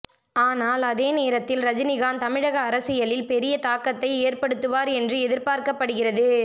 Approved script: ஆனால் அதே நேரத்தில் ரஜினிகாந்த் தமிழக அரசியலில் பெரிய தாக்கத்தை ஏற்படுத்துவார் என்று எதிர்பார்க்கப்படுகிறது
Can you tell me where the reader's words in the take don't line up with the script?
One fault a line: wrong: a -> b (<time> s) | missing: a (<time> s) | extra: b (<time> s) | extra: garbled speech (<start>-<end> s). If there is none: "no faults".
no faults